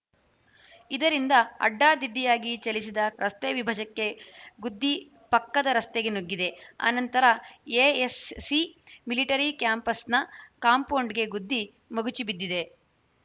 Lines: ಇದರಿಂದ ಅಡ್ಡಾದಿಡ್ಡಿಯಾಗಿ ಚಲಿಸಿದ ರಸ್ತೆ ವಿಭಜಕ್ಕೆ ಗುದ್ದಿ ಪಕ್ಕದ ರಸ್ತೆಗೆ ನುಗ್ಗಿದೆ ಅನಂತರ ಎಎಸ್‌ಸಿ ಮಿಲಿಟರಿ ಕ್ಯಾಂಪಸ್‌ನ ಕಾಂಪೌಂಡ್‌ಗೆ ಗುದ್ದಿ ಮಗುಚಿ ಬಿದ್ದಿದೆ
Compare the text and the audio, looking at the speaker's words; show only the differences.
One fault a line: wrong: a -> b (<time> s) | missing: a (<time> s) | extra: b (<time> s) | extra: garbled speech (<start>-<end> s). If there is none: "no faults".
no faults